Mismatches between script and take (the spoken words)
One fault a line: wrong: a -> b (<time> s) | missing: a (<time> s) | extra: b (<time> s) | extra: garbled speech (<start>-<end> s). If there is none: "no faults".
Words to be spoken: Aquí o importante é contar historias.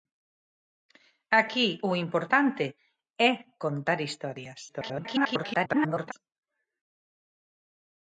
extra: garbled speech (4.7-6.1 s)